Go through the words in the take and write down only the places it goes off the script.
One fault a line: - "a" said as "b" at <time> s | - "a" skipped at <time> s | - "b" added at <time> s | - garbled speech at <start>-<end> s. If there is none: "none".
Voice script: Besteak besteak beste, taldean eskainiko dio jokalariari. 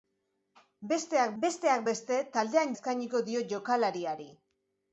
none